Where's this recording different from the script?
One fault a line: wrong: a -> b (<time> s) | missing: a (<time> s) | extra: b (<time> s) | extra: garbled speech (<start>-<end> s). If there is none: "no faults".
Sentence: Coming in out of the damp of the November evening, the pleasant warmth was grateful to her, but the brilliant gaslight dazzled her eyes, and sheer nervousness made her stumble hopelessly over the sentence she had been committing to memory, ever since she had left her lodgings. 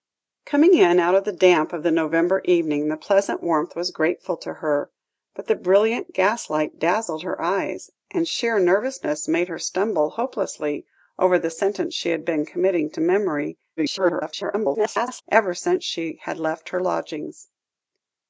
extra: garbled speech (13.8-15.2 s)